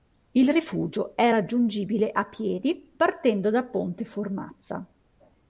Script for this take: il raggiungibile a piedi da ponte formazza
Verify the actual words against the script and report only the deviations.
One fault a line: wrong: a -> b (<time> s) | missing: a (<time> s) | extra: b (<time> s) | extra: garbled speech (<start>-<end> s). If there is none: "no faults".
extra: rifugio è (0.5 s)
extra: partendo (3.0 s)